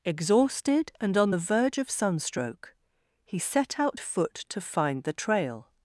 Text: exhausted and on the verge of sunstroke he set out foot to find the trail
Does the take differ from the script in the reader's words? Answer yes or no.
no